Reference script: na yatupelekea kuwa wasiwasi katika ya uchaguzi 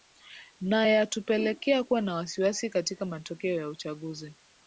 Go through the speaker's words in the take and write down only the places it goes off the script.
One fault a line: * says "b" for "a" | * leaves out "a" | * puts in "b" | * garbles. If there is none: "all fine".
* puts in "na"
* puts in "matokeo"